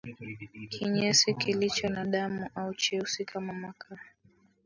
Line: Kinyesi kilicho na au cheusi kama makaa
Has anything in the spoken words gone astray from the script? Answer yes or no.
yes